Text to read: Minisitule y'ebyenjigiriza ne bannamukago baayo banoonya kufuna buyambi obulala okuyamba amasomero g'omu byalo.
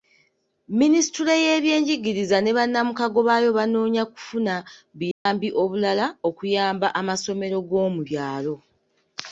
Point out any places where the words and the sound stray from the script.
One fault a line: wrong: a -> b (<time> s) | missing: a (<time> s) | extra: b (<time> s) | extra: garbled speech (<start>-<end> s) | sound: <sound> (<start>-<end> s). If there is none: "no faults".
sound: dropout (5.1-5.3 s)